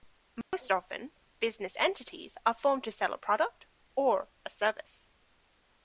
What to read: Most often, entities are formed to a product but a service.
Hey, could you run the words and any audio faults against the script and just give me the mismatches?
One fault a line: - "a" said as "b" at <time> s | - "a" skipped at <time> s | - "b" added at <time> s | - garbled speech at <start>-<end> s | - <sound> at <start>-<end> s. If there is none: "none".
- dropout at 0.4-0.5 s
- "business" added at 1.4 s
- "sell" added at 2.9 s
- "but" said as "or" at 4.0 s